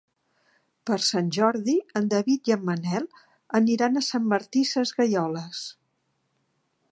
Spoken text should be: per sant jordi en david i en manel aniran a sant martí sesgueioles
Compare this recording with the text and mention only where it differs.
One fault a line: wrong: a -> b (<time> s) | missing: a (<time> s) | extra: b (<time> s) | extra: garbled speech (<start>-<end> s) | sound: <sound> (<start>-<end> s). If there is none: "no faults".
no faults